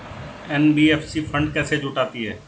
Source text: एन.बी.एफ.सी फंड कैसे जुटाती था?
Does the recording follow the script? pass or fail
fail